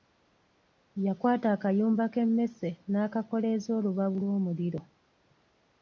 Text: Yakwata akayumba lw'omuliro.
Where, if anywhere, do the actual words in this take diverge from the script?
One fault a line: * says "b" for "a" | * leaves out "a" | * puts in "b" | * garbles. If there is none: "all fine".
* puts in "k'emmese n'akakoleeza olubabu"